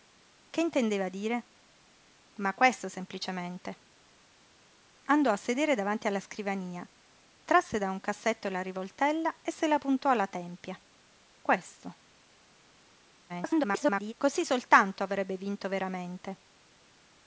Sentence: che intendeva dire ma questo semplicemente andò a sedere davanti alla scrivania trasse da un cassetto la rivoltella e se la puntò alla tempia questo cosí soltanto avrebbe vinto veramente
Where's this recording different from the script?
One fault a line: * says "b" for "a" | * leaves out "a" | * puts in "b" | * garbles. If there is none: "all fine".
* garbles